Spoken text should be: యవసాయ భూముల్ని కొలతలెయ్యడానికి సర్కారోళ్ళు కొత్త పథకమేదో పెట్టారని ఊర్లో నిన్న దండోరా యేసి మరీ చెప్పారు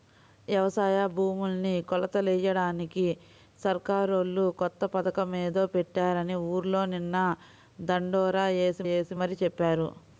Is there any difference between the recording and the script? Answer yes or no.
yes